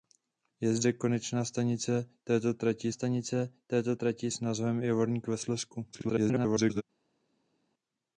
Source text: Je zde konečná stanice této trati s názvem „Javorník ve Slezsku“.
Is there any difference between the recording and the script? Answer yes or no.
yes